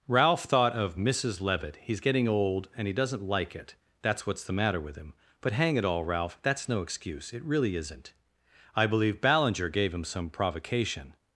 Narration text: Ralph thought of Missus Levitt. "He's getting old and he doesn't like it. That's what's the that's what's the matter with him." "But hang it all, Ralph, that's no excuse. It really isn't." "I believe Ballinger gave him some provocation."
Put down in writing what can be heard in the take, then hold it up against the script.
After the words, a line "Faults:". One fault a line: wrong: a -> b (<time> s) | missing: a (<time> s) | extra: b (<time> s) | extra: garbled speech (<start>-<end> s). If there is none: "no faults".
Ralph thought of Missus Levitt. "He's getting old and he doesn't like it. That's what's the matter with him." "But hang it all, Ralph, that's no excuse. It really isn't." "I believe Ballinger gave him some provocation."
Faults:
missing: that's what's the (4.5 s)